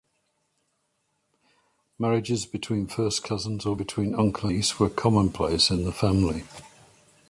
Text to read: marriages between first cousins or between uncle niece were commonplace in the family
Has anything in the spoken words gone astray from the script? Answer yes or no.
no